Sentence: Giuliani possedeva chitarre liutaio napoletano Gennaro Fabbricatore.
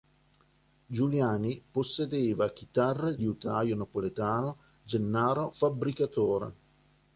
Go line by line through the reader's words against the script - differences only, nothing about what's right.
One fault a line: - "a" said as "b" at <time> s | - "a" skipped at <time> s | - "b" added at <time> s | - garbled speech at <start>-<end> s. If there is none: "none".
none